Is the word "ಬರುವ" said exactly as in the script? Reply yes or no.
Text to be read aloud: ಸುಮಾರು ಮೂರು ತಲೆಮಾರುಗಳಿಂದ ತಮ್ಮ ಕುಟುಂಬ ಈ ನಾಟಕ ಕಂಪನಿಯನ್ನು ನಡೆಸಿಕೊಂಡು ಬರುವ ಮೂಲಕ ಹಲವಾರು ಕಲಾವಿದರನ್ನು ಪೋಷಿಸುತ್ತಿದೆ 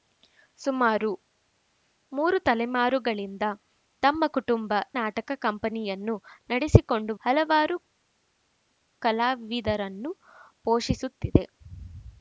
no